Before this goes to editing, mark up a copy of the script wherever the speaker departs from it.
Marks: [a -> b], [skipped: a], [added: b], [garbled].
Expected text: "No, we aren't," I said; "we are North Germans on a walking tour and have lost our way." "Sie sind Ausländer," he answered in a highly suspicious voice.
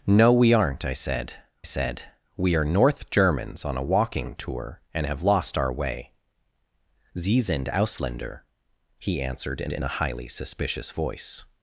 "No, we aren't," I said; [added: said] "we are North Germans on a walking tour and have lost our way." "Sie sind Ausländer," he answered in [added: in] a highly suspicious voice.